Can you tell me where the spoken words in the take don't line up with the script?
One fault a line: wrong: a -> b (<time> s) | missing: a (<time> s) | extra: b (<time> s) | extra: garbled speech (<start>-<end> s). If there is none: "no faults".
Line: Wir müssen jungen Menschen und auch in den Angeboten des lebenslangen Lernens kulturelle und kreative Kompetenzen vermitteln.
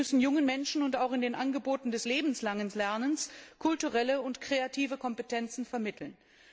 no faults